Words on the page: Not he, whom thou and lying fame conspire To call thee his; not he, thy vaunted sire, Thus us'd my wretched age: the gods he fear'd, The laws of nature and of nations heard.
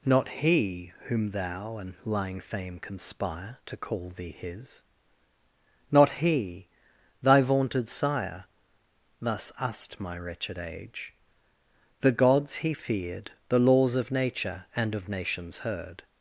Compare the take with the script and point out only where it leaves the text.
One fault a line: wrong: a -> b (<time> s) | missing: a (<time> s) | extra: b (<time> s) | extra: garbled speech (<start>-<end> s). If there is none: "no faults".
no faults